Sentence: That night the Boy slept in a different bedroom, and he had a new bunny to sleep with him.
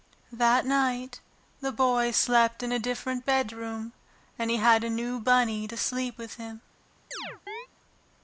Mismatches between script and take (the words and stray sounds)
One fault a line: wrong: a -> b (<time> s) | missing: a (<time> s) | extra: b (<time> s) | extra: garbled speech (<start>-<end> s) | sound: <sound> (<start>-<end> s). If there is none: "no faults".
sound: chirp (7.1-7.7 s)